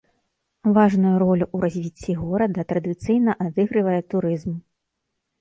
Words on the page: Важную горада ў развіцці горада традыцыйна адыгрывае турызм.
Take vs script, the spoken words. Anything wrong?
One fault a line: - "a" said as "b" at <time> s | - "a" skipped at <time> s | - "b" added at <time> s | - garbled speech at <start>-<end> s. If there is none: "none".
- "горада" said as "ролю" at 1.2 s